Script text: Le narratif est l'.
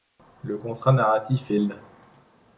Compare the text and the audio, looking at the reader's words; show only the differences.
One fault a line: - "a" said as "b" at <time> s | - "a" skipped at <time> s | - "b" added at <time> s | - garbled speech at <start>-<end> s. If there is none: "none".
- "contrat" added at 0.5 s